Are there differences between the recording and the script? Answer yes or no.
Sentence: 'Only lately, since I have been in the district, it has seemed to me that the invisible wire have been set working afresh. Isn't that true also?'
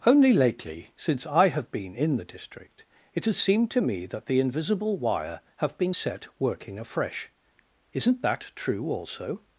no